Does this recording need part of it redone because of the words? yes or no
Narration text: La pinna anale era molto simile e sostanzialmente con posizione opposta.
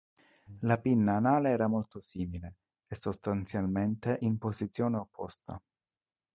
yes